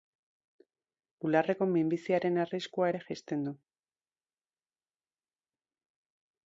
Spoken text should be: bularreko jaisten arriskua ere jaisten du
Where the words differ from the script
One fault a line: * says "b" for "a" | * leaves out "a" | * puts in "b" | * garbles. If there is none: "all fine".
* says "minbiziaren" for "jaisten"